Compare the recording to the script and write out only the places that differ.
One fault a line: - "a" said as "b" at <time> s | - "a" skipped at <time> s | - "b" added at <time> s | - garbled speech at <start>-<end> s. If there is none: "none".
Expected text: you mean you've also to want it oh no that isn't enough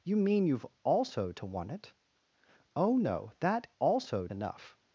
- "isn't" said as "also" at 3.8 s